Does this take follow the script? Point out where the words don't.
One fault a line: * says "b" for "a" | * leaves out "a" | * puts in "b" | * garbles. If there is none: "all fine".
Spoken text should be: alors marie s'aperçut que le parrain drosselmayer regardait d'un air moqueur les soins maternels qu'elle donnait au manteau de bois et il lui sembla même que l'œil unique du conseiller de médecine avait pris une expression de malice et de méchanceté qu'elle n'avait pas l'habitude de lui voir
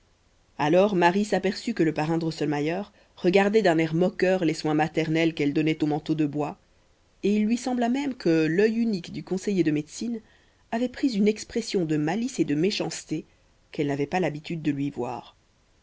all fine